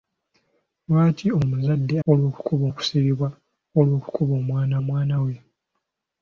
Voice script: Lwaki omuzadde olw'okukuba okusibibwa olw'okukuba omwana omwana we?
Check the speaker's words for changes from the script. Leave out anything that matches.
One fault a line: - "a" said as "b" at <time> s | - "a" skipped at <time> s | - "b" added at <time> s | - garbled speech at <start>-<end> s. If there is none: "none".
none